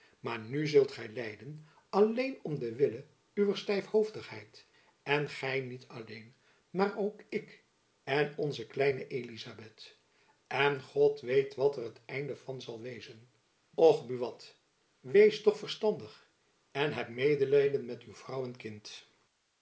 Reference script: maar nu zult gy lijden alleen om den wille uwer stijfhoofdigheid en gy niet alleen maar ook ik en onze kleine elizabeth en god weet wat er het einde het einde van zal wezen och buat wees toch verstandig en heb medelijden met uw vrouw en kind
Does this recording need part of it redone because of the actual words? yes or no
yes